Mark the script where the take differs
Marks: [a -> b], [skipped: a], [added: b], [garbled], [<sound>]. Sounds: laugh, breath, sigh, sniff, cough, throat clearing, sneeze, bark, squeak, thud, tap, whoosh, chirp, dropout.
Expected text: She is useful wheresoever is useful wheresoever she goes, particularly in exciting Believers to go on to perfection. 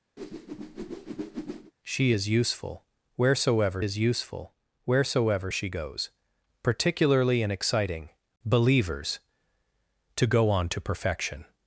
[whoosh] She is useful wheresoever is useful wheresoever she goes, particularly in exciting Believers to go on to perfection.